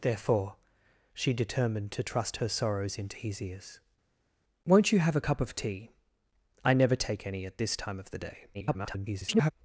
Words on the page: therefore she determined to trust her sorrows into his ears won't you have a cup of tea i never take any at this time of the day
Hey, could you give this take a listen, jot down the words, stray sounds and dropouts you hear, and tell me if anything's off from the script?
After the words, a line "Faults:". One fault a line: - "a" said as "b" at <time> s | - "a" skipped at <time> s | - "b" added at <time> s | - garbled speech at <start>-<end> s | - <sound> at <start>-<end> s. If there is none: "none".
therefore she determined to trust her sorrows into his ears won't you have a cup of tea i never take any at this time of the day [garbled]
Faults:
- garbled speech at 8.5-9.5 s